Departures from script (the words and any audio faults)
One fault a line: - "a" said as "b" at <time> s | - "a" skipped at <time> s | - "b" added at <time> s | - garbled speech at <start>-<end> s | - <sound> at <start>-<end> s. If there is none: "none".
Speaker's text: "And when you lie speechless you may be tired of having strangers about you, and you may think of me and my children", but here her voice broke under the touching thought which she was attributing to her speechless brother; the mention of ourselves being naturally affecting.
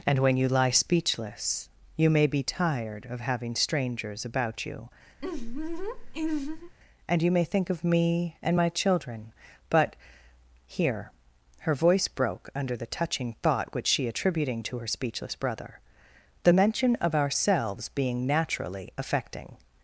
- laugh at 5.2-6.7 s
- "was" skipped at 14.1 s